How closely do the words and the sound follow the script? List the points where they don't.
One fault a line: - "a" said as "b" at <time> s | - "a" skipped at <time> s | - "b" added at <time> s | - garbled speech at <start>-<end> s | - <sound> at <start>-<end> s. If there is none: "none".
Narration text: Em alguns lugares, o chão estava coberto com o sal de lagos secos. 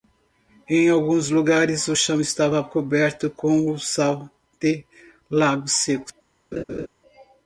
- laugh at 6.5-6.9 s